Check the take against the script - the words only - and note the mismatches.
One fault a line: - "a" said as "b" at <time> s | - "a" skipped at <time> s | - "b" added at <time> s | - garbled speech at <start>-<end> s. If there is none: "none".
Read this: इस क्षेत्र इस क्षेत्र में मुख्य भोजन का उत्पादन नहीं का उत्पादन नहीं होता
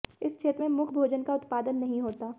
- "इस क्षेत्र" skipped at 0.6 s
- "का उत्पादन नहीं" skipped at 2.0 s